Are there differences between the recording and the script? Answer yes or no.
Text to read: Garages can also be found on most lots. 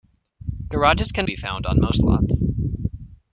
yes